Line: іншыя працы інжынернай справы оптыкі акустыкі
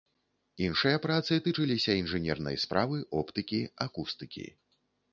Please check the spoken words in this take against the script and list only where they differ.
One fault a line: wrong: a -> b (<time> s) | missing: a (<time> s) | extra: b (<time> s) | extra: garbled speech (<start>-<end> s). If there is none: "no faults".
extra: тычыліся (1.5 s)